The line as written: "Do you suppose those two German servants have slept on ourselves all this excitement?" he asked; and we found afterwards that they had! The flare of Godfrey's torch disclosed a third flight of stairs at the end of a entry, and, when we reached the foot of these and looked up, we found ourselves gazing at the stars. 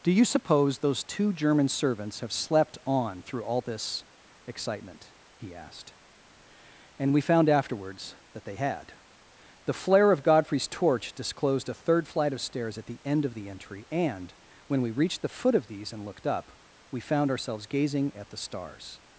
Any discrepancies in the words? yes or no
yes